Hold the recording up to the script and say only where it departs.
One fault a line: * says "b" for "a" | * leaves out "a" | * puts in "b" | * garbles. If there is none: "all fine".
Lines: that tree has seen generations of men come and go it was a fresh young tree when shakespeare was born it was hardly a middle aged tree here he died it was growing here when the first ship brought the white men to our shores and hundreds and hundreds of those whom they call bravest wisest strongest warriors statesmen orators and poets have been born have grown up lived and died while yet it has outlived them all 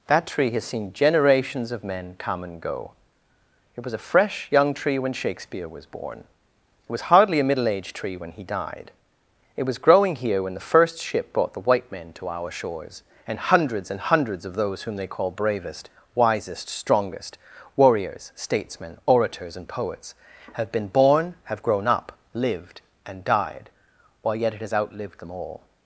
* says "when" for "here"